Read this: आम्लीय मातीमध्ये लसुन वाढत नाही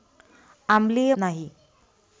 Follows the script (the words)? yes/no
no